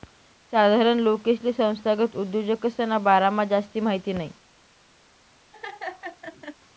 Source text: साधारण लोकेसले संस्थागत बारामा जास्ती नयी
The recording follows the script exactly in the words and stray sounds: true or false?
false